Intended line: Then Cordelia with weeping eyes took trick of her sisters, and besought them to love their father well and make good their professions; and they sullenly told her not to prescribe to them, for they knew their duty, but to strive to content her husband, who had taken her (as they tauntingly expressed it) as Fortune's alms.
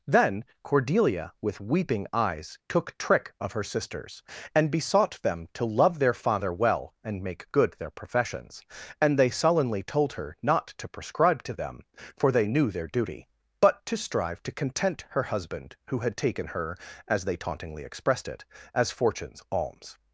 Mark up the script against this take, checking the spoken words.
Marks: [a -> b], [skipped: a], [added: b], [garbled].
Then Cordelia with weeping eyes took trick of her sisters, and besought them to love their father well and make good their professions; and they sullenly told her not to prescribe to them, for they knew their duty, but to strive to content her husband, who had taken her (as they tauntingly expressed it) as Fortune's alms.